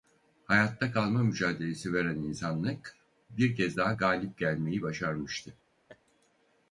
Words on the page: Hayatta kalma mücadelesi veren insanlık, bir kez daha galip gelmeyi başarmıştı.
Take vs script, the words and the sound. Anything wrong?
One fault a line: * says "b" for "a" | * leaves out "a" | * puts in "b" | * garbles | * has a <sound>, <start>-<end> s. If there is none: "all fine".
* has a laugh, 5.9-6.0 s